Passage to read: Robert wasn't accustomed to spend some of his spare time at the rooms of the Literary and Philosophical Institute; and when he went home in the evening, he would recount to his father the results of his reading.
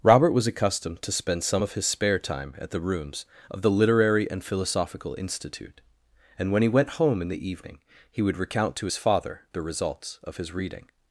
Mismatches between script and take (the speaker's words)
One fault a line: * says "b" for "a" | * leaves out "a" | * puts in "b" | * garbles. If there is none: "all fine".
* says "was" for "wasn't"